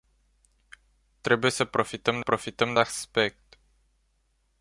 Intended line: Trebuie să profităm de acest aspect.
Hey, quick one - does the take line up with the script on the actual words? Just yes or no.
no